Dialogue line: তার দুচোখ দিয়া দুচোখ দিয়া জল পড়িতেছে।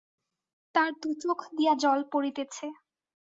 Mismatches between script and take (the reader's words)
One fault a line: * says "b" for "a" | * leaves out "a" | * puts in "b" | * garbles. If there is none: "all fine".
* leaves out "দুচোখ দিয়া"